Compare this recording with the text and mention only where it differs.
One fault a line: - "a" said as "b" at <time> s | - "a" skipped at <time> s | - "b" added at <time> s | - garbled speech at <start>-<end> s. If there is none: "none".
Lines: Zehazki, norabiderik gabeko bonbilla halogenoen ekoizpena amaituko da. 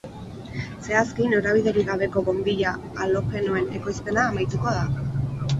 none